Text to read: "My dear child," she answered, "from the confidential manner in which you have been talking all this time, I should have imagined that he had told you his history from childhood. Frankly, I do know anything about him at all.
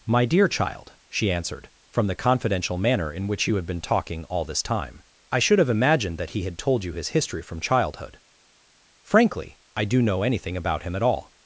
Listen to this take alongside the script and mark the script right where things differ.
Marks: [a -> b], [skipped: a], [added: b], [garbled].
"My dear child," she answered, "from the confidential manner in which you have been talking all this time, I should have imagined that he had told you his history from childhood. Frankly, I do know anything about him at all.